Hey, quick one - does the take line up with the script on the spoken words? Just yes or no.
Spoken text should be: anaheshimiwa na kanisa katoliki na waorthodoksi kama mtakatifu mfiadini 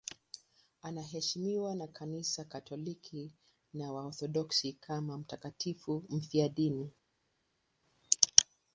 yes